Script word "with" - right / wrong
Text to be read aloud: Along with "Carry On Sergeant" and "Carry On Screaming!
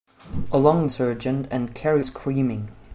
wrong